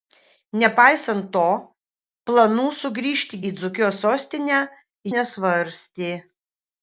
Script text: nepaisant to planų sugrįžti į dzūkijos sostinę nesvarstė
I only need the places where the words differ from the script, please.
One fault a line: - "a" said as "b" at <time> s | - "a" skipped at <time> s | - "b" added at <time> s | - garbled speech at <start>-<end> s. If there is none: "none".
none